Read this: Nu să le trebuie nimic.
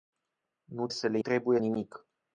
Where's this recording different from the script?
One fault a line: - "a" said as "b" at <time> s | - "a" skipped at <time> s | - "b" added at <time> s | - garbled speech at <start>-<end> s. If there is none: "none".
none